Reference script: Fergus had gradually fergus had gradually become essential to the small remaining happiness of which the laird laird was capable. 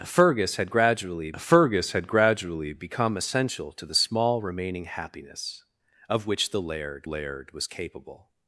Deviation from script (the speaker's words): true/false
false